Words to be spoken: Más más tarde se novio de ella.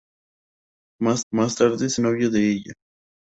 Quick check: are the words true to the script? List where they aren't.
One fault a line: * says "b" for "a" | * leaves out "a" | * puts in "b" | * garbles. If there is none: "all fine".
all fine